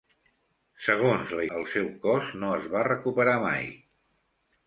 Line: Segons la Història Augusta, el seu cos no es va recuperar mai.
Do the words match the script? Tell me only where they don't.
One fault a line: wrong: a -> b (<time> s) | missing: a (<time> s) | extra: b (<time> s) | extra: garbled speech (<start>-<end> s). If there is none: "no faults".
missing: Història Augusta (1.4 s)